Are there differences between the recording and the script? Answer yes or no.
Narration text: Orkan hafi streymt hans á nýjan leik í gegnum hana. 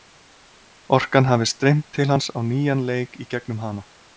yes